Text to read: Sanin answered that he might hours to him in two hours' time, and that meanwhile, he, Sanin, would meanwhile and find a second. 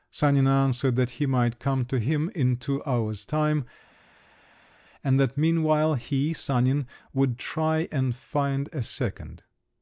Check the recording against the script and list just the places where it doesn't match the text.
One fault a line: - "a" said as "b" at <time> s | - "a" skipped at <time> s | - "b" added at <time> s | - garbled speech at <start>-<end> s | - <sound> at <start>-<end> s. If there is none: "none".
- "hours" said as "come" at 1.6 s
- "meanwhile" said as "try" at 7.4 s